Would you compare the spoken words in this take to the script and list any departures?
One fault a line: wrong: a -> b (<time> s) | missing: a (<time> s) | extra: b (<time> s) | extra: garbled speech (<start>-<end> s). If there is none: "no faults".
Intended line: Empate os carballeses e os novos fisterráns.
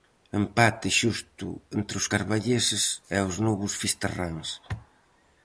extra: xusto entre (1.0 s)